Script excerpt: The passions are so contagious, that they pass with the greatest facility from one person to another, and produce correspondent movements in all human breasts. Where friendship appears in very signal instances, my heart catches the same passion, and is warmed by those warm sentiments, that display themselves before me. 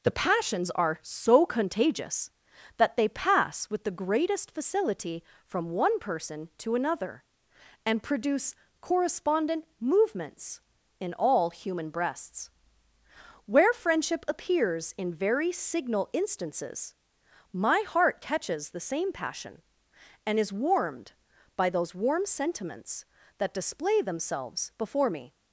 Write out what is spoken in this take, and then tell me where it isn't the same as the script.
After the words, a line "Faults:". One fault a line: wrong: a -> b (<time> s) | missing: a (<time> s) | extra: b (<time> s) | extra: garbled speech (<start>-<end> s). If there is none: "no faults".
The passions are so contagious, that they pass with the greatest facility from one person to another, and produce correspondent movements in all human breasts. Where friendship appears in very signal instances, my heart catches the same passion, and is warmed by those warm sentiments, that display themselves before me.
Faults:
no faults